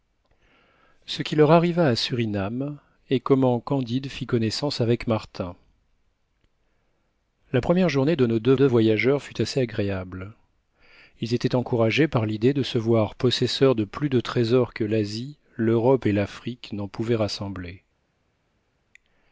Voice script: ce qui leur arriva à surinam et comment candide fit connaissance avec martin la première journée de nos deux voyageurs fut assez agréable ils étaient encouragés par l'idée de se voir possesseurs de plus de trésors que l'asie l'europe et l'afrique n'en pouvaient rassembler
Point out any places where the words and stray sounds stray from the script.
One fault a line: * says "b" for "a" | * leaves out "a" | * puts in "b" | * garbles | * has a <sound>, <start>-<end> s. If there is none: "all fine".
* puts in "deux"